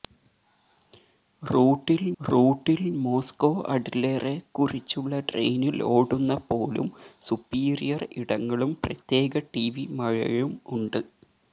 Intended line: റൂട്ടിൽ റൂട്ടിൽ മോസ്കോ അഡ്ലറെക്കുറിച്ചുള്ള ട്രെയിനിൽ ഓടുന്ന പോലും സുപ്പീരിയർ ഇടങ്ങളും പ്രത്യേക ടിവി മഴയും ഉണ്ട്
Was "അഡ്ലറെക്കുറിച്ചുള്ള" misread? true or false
false